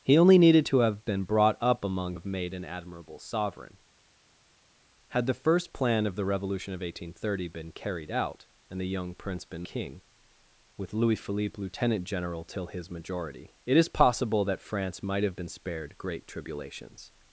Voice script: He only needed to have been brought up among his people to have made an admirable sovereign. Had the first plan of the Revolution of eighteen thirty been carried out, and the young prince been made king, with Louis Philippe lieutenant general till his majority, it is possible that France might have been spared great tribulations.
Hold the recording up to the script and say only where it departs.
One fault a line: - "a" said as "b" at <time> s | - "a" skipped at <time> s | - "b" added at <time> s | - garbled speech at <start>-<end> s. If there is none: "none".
- "his people to" skipped at 2.1 s
- "made" skipped at 9.7 s